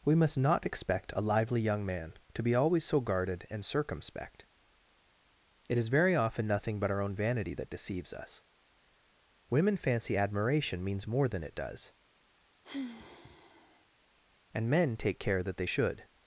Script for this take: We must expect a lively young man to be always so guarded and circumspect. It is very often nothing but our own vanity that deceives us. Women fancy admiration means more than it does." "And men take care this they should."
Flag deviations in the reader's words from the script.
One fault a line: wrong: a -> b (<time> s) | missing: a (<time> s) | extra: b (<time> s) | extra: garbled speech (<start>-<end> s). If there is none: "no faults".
extra: not (0.4 s)
wrong: this -> that (15.4 s)